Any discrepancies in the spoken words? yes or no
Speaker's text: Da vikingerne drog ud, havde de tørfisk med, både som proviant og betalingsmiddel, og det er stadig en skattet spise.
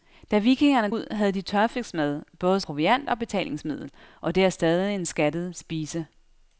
yes